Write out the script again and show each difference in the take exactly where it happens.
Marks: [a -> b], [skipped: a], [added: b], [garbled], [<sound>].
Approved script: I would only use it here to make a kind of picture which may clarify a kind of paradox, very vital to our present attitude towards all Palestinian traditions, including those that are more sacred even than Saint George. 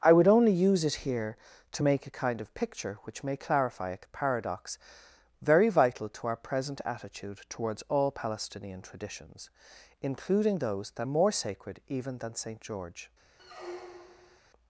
I would only use it here to make a kind of picture which may clarify a [skipped: kind] of paradox, very vital to our present attitude towards all Palestinian traditions, including those that [skipped: are] more sacred even than Saint George. [squeak]